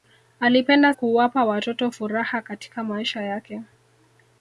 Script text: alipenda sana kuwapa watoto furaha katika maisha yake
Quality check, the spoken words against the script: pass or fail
fail